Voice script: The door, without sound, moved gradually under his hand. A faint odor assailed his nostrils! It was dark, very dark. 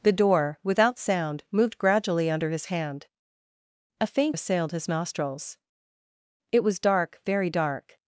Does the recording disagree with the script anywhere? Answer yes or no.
yes